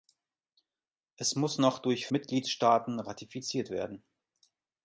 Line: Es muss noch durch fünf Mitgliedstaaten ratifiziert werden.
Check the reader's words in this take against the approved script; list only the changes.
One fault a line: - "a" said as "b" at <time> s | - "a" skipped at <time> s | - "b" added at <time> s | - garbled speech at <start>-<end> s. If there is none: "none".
- "fünf" skipped at 2.1 s